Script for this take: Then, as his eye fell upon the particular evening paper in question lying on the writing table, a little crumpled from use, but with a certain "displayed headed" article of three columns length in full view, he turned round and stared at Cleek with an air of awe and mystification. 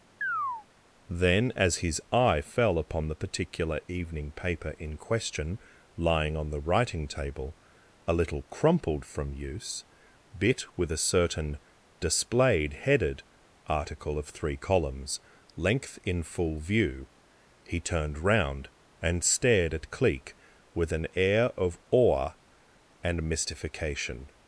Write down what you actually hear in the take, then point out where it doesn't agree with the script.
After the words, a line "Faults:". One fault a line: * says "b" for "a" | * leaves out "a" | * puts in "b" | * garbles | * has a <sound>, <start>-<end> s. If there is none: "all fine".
Then, as his eye fell upon the particular evening paper in question lying on the writing table, a little crumpled from use, bit with a certain "displayed headed" article of three columns length in full view, he turned round and stared at Cleek with an air of awe and mystification.
Faults:
* has a chirp, 0.2-0.7 s
* says "bit" for "but"